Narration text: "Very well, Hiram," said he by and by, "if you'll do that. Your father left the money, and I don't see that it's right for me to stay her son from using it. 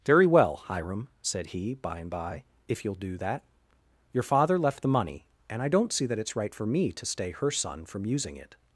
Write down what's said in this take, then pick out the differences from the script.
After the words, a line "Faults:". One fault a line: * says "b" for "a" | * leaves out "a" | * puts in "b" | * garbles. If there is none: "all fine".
"Very well, Hiram," said he by and by, "if you'll do that. Your father left the money, and I don't see that it's right for me to stay her son from using it.
Faults:
all fine